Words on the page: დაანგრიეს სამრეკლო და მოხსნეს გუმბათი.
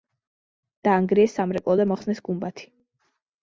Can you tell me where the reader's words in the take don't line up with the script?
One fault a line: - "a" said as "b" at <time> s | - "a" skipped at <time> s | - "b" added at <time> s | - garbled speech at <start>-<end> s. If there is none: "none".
none